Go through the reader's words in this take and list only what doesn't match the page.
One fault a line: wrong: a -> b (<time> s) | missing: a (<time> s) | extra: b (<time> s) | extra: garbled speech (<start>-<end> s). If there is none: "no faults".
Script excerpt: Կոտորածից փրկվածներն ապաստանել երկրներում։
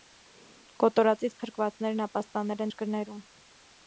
no faults